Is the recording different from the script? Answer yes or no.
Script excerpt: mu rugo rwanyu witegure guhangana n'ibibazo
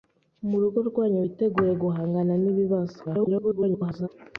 yes